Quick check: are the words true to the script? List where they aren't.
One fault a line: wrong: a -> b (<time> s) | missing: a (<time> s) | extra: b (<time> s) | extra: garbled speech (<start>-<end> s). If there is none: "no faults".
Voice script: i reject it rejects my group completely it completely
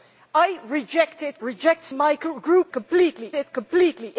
no faults